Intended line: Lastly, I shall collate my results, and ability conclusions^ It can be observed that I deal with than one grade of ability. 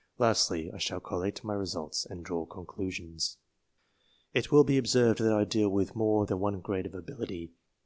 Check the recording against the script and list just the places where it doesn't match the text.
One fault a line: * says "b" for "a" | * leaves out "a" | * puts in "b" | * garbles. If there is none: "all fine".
* says "draw" for "ability"
* says "will" for "can"
* puts in "more"